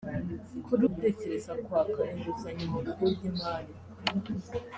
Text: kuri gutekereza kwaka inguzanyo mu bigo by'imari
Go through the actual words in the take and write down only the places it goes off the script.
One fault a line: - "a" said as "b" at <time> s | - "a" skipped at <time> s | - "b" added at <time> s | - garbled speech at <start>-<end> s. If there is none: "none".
none